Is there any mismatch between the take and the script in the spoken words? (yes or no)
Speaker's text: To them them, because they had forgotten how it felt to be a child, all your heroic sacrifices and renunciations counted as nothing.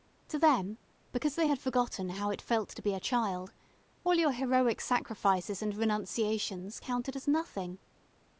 yes